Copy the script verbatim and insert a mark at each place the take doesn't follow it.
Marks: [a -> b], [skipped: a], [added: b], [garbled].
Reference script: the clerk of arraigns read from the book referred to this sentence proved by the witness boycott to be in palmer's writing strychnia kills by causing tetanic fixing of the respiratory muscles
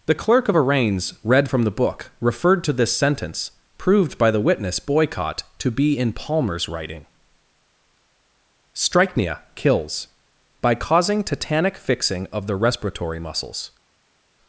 the clerk of arraigns read from the book referred to this sentence proved by the witness boycott to be in palmer's writing strychnia kills by causing tetanic fixing of the respiratory muscles